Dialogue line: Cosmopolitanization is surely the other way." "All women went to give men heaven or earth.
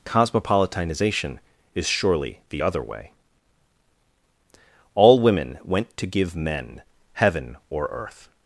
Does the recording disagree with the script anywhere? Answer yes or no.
no